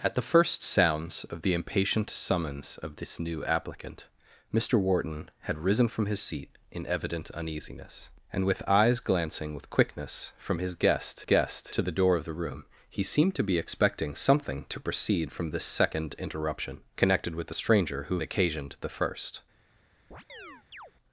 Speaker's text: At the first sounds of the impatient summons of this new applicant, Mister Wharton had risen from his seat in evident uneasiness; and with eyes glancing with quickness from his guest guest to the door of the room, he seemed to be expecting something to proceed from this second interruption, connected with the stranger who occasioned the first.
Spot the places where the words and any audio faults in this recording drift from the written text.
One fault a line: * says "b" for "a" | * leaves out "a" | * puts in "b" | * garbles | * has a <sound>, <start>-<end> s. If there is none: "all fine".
* has a chirp, 20.1-20.9 s